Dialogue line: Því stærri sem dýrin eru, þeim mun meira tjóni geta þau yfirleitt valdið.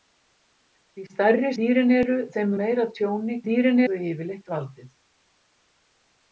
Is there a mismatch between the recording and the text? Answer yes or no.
yes